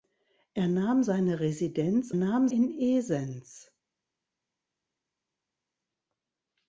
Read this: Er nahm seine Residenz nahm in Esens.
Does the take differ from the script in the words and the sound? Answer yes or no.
no